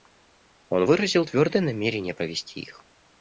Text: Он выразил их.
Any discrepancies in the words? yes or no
yes